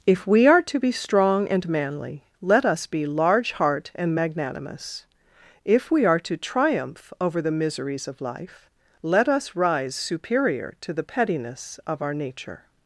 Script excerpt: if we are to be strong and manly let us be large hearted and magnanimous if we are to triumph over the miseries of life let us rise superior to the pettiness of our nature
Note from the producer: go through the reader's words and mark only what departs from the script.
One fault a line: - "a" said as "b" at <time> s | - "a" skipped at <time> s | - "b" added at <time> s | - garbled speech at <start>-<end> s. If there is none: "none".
- "hearted" said as "heart" at 3.5 s